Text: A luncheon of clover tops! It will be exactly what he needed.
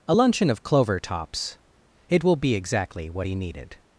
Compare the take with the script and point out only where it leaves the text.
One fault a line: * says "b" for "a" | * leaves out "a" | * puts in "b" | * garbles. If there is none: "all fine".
all fine